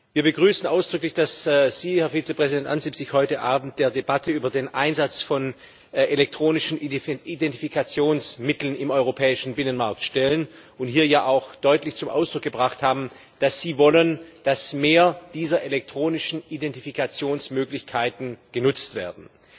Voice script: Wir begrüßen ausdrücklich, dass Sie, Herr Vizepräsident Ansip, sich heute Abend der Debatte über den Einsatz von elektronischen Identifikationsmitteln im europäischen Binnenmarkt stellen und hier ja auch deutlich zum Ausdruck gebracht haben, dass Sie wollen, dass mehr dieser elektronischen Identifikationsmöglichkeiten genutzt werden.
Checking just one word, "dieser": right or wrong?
right